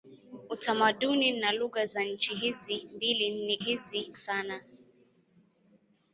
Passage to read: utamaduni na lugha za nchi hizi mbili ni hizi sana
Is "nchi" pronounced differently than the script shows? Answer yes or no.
no